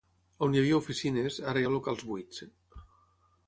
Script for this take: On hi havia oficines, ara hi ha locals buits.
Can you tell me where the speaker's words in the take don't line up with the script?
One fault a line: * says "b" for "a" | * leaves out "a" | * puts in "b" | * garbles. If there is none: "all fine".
all fine